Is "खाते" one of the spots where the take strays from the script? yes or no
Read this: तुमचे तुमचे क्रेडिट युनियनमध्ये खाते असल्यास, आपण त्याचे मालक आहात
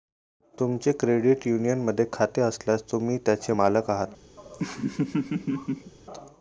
no